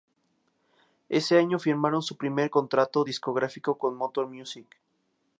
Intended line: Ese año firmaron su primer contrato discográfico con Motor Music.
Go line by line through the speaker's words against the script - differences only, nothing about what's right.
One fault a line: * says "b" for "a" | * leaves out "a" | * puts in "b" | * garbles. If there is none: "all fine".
all fine